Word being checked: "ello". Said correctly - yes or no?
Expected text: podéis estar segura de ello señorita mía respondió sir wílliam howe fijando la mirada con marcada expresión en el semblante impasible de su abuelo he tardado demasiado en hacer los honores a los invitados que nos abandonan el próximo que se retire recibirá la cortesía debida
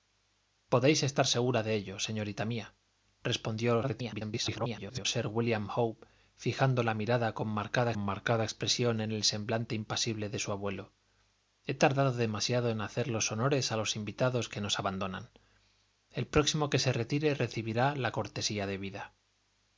yes